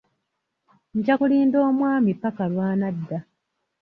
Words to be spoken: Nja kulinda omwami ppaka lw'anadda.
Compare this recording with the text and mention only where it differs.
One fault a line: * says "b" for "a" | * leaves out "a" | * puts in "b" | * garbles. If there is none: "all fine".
all fine